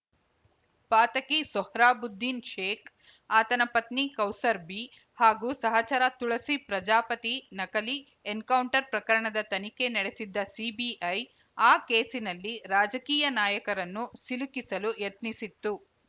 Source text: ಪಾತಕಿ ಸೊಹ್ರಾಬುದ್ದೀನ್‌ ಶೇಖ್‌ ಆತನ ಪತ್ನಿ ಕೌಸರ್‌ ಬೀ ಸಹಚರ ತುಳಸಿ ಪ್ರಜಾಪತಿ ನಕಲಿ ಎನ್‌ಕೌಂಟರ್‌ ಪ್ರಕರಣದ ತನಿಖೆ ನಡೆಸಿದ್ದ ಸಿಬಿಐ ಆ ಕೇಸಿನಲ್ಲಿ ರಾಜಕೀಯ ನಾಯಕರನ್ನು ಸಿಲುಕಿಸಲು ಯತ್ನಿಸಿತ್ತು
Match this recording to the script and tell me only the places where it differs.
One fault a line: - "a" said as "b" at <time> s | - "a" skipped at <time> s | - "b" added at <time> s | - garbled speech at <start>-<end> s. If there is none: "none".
- "ಹಾಗೂ" added at 5.2 s